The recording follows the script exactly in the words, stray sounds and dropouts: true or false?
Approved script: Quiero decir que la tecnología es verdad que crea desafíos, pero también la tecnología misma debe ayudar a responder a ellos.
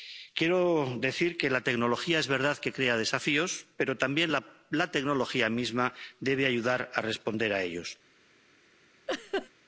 false